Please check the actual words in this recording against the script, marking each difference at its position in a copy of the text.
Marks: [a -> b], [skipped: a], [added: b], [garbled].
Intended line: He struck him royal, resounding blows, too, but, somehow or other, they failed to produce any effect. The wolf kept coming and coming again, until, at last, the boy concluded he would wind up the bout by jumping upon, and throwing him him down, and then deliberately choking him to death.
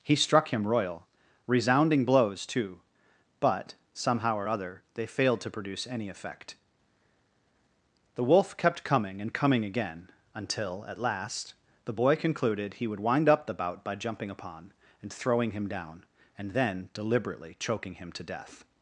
He struck him royal, resounding blows, too, but, somehow or other, they failed to produce any effect. The wolf kept coming and coming again, until, at last, the boy concluded he would wind up the bout by jumping upon, and throwing him [skipped: him] down, and then deliberately choking him to death.